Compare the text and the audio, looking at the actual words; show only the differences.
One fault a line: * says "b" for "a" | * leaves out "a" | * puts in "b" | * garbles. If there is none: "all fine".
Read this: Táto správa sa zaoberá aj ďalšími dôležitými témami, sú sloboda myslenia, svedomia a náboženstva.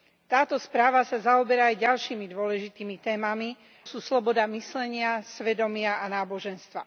all fine